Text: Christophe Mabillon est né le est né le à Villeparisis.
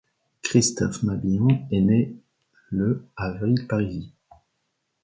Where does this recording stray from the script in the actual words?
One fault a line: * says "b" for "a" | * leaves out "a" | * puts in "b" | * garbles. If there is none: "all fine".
* leaves out "est né le"